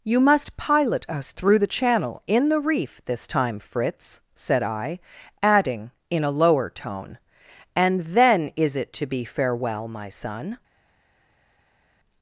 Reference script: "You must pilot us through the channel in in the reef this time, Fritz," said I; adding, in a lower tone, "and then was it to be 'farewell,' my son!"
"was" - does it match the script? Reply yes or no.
no